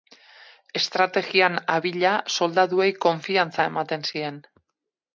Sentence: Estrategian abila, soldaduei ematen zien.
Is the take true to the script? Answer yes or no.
no